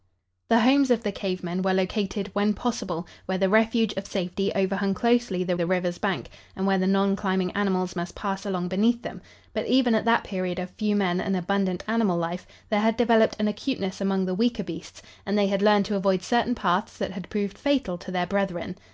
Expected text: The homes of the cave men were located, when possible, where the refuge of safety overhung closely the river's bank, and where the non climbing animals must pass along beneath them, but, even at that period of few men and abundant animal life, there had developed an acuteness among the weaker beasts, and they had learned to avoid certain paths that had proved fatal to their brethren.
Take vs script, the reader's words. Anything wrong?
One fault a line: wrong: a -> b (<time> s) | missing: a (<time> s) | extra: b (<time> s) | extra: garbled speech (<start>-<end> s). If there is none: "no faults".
extra: the (5.5 s)